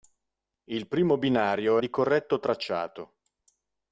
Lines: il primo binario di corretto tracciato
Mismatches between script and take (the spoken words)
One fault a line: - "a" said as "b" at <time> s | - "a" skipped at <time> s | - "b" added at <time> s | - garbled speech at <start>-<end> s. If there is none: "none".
none